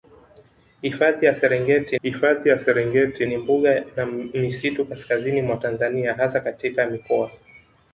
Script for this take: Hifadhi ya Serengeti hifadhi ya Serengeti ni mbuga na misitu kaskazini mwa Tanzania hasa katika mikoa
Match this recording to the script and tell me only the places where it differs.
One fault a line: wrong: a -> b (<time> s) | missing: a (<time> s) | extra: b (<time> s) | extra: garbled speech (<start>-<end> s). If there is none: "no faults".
no faults